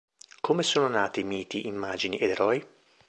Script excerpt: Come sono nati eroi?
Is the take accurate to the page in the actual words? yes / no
no